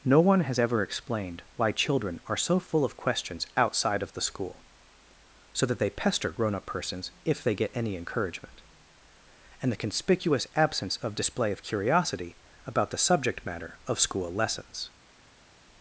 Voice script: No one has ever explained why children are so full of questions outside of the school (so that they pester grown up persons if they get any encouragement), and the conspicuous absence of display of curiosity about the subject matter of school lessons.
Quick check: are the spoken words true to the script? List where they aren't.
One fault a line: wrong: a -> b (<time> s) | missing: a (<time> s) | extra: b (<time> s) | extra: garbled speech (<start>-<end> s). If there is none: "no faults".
no faults